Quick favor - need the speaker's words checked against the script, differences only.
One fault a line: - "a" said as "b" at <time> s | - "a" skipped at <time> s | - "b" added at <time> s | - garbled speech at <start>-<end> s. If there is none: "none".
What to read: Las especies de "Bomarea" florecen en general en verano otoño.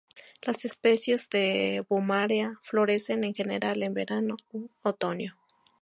- "u" added at 4.5 s